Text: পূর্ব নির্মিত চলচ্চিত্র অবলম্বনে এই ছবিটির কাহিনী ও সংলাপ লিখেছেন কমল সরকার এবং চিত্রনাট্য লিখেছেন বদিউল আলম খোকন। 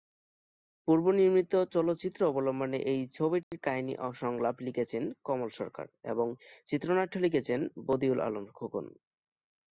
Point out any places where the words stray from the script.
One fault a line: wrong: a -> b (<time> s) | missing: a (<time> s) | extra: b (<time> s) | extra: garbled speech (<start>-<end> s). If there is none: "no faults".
no faults